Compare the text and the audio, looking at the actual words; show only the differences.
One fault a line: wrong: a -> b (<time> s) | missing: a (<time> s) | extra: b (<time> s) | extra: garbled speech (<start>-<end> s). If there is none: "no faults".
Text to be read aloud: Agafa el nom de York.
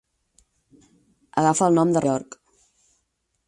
no faults